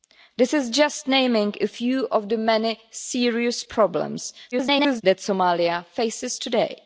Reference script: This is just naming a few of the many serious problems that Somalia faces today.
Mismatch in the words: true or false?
true